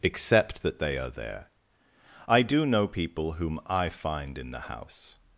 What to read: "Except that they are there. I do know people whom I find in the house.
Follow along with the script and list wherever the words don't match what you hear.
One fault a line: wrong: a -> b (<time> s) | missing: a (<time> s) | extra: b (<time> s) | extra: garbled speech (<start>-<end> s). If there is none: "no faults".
no faults